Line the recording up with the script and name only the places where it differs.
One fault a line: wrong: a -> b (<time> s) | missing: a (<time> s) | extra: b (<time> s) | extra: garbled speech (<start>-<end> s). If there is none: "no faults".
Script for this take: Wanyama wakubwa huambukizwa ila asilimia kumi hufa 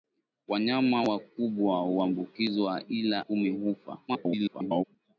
missing: asilimia (3.2 s)
extra: garbled speech (4.1-4.8 s)